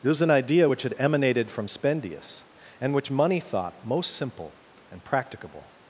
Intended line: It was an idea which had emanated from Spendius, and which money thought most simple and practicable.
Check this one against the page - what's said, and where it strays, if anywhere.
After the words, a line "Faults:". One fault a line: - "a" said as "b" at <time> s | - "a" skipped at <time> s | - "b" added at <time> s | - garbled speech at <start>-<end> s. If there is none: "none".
It was an idea which had emanated from Spendius, and which money thought most simple and practicable.
Faults:
none